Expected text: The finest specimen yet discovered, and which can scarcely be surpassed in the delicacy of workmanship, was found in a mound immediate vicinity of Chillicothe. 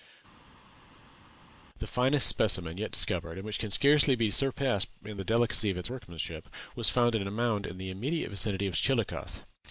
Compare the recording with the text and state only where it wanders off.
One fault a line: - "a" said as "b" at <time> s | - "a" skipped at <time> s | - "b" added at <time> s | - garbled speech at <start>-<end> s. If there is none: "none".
- "its" added at 5.8 s
- "in the" added at 7.7 s